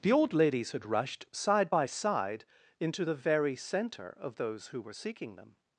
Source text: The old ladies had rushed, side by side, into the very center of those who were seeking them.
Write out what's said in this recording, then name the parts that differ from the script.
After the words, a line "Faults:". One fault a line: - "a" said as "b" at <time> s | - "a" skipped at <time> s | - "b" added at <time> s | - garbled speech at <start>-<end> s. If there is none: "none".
The old ladies had rushed, side by side, into the very center of those who were seeking them.
Faults:
none